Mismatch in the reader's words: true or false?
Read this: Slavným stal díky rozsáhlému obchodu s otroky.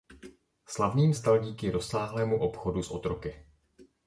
false